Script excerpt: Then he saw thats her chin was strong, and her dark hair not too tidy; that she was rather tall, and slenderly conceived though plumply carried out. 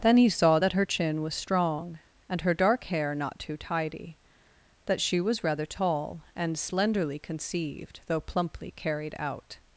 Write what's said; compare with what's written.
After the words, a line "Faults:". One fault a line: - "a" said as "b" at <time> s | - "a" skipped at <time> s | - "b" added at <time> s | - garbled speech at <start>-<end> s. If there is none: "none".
Then he saw that her chin was strong, and her dark hair not too tidy; that she was rather tall, and slenderly conceived though plumply carried out.
Faults:
- "thats" said as "that" at 0.6 s